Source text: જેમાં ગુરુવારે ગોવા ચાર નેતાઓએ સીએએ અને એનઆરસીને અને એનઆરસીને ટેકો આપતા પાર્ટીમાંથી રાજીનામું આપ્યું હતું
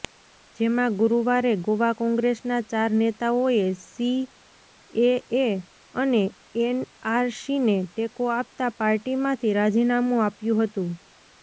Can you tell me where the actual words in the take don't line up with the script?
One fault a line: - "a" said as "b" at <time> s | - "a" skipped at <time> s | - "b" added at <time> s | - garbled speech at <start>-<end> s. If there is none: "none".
- "કોંગ્રેસના" added at 2.0 s
- "અને એનઆરસીને" skipped at 7.8 s